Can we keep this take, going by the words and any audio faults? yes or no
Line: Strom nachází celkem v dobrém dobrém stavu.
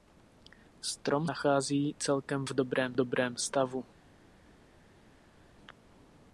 yes